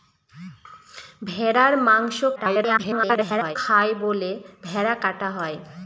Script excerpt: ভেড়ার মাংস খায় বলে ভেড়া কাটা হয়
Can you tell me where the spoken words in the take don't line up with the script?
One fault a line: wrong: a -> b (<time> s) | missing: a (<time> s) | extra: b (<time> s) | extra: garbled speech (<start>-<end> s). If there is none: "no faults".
extra: garbled speech (2.4-3.6 s)